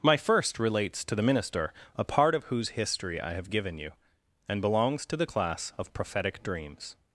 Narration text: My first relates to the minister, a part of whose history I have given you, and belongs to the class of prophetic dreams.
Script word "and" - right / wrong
right